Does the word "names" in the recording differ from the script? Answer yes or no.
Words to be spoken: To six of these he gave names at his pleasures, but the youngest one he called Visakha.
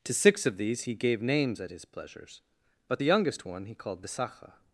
no